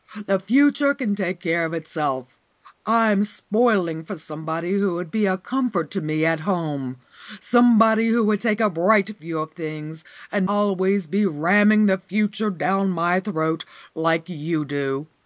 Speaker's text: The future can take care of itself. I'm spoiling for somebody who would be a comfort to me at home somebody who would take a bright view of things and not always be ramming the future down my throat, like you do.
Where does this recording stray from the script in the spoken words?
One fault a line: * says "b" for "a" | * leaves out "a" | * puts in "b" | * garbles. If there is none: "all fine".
* leaves out "not"